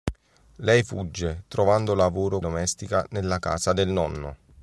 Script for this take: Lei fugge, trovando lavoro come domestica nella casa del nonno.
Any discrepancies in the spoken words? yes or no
yes